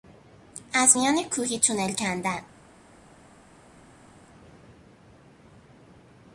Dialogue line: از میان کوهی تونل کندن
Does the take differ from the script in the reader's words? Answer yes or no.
no